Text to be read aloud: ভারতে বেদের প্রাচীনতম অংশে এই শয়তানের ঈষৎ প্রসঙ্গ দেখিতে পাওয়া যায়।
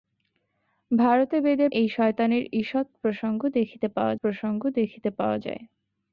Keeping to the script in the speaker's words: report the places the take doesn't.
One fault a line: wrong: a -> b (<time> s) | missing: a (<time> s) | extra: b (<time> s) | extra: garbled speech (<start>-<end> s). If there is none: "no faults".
missing: প্রাচীনতম অংশে (1.7 s)
extra: প্রসঙ্গ দেখিতে পাওয়া (4.2 s)